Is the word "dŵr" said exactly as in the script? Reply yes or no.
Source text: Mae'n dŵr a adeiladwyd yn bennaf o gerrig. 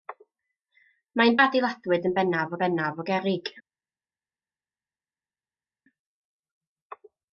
no